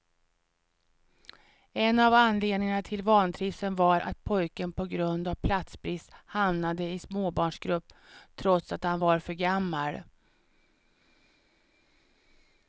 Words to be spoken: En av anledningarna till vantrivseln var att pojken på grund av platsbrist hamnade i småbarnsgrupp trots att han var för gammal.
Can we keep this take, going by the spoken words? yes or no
yes